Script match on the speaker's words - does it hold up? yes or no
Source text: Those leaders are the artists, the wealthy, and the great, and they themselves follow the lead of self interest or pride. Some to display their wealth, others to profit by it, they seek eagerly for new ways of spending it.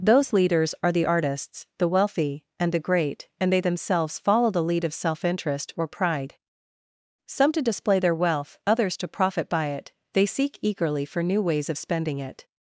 yes